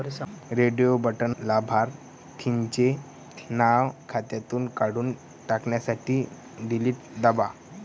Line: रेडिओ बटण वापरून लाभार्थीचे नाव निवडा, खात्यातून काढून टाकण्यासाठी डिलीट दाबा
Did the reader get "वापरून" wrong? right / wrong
wrong